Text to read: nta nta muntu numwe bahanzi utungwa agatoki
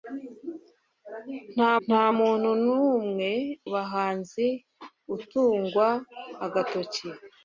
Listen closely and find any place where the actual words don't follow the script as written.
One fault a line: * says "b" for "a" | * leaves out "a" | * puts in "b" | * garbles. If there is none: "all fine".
all fine